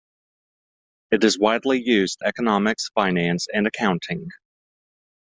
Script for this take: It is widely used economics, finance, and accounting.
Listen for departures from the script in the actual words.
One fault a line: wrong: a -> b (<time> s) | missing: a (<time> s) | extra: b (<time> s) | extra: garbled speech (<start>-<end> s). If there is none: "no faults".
no faults